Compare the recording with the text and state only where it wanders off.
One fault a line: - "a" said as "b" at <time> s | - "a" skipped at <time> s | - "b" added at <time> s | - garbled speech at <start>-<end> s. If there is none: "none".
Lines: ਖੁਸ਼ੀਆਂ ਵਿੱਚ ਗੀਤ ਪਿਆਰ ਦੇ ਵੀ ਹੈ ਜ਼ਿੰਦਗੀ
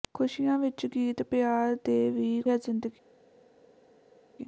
none